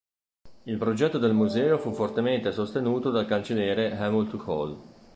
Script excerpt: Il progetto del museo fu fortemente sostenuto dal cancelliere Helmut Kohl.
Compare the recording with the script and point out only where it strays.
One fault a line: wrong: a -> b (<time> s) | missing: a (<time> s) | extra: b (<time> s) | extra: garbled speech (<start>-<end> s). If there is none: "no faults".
no faults